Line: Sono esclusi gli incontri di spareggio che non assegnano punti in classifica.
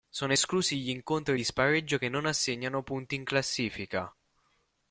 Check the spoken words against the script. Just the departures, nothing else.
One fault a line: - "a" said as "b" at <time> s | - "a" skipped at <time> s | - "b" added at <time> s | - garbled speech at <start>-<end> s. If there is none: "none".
none